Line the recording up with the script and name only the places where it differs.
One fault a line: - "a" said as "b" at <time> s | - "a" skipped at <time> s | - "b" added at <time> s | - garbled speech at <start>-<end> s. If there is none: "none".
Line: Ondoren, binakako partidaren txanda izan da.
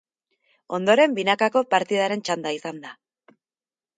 none